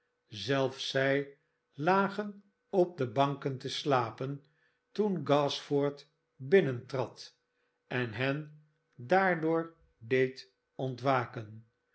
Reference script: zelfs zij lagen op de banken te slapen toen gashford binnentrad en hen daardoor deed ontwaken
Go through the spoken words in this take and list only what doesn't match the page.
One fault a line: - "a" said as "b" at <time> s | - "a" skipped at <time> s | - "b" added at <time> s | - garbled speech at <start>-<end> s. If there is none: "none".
none